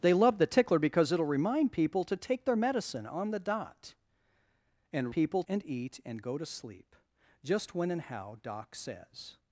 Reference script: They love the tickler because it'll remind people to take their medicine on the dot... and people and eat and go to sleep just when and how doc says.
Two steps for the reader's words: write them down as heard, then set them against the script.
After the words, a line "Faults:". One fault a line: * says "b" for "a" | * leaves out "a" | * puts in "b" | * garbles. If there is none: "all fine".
They love the tickler because it'll remind people to take their medicine on the dot... and people and eat and go to sleep just when and how doc says.
Faults:
all fine